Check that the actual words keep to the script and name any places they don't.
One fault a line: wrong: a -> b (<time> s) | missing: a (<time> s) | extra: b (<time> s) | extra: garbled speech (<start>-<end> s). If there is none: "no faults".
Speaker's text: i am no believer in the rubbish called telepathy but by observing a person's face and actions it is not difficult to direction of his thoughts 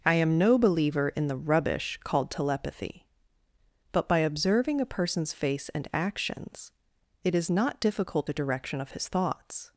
no faults